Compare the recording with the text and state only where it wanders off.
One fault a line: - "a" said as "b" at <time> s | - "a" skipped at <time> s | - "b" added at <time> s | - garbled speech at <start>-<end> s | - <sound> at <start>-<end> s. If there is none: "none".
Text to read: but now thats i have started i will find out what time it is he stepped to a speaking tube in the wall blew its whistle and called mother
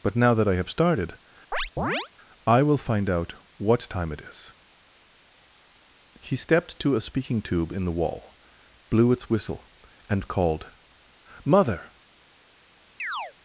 - "thats" said as "that" at 0.3 s
- chirp at 1.5-2.1 s
- chirp at 13.0-13.3 s